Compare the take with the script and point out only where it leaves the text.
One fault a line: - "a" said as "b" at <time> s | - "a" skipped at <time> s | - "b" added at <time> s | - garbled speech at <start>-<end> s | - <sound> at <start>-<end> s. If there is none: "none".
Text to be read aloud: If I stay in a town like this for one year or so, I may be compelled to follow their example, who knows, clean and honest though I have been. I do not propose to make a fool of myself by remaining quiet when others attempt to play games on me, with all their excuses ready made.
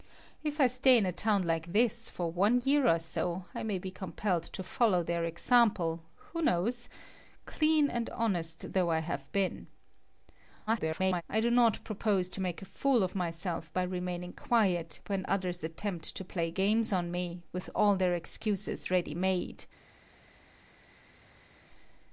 - garbled speech at 10.7-11.2 s